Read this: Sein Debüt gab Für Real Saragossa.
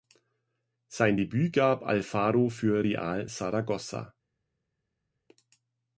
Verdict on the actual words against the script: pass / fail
fail